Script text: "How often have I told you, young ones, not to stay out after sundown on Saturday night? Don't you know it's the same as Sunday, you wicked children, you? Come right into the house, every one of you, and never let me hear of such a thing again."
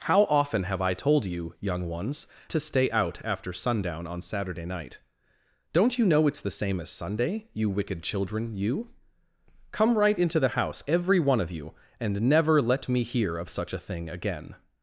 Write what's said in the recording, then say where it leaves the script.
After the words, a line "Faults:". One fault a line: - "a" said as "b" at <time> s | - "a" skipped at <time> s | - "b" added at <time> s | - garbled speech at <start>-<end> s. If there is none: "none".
"How often have I told you, young ones, to stay out after sundown on Saturday night? Don't you know it's the same as Sunday, you wicked children, you? Come right into the house, every one of you, and never let me hear of such a thing again."
Faults:
- "not" skipped at 2.2 s